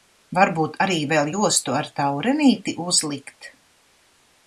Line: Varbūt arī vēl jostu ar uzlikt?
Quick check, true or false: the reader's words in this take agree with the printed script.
false